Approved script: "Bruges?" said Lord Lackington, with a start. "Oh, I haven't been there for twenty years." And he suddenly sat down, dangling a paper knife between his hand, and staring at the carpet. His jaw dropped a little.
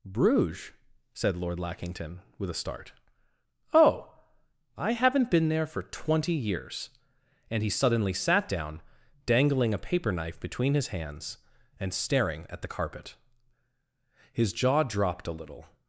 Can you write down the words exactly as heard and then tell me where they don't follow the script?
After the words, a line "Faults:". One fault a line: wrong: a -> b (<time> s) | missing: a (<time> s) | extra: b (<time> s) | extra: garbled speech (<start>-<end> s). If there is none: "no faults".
"Bruges?" said Lord Lackington, with a start. "Oh, I haven't been there for twenty years." And he suddenly sat down, dangling a paper knife between his hands, and staring at the carpet. His jaw dropped a little.
Faults:
wrong: hand -> hands (10.9 s)